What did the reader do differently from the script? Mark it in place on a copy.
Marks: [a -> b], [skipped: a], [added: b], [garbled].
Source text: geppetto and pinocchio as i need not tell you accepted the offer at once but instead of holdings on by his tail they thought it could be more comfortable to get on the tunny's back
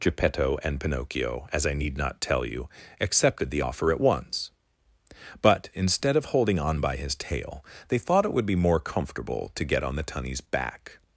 geppetto and pinocchio as i need not tell you accepted the offer at once but instead of [holdings -> holding] on by his tail they thought it [could -> would] be more comfortable to get on the tunny's back